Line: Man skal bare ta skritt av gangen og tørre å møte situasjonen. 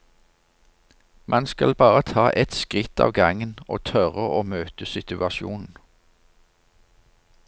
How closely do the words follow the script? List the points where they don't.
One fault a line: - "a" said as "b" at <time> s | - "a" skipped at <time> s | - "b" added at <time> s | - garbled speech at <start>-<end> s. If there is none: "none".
- "ett" added at 2.3 s